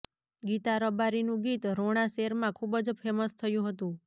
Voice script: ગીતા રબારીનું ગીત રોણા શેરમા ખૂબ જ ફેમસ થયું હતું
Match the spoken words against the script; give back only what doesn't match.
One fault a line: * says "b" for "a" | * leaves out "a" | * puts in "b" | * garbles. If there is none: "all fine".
all fine